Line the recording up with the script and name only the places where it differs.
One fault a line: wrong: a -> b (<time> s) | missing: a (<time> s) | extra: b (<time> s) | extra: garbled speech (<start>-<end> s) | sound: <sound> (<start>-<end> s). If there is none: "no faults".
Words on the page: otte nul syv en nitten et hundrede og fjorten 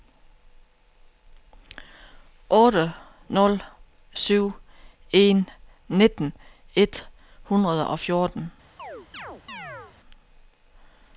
sound: chirp (8.8-10.0 s)